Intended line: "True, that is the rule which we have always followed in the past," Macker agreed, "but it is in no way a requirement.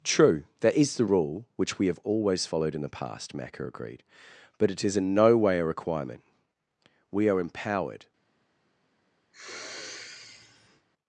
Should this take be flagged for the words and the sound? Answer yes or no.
yes